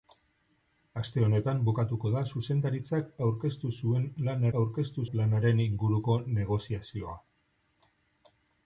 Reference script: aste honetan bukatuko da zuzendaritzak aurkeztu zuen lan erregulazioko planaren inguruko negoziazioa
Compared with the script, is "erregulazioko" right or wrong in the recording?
wrong